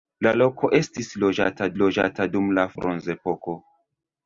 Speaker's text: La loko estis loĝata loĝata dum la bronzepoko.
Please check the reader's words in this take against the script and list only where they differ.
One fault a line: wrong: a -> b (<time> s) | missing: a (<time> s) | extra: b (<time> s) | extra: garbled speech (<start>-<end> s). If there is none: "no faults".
no faults